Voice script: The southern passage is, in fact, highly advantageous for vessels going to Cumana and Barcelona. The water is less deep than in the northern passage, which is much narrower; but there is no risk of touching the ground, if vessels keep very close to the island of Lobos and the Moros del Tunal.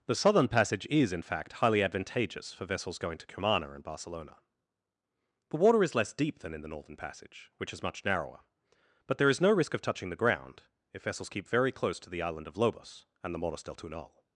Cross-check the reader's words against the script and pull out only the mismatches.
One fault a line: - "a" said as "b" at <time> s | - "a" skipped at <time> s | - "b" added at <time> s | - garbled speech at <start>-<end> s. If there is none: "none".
none